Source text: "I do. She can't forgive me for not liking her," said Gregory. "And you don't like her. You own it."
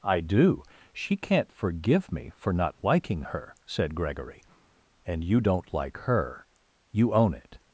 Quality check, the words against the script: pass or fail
pass